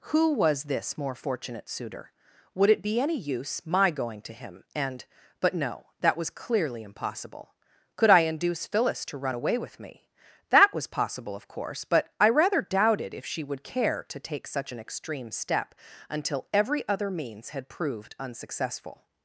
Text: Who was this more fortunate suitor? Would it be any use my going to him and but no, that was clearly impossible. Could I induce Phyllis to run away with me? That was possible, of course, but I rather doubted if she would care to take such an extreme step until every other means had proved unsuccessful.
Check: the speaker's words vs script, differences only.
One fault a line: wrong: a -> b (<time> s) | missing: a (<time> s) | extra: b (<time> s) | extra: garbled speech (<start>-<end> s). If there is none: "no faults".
no faults